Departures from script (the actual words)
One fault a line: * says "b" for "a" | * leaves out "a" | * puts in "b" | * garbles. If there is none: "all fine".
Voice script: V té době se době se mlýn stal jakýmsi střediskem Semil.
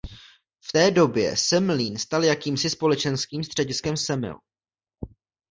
* leaves out "době se"
* puts in "společenským"